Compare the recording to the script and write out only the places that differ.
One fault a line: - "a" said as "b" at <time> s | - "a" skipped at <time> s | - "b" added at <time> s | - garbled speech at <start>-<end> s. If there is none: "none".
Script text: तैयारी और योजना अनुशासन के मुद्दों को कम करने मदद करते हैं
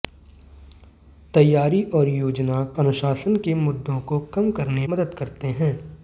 none